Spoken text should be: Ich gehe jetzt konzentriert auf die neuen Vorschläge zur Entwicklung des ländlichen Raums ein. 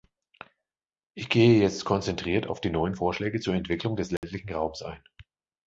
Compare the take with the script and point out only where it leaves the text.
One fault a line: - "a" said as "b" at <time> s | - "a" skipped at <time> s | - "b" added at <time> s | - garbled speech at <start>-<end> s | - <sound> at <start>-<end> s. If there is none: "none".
- dropout at 4.2-4.2 s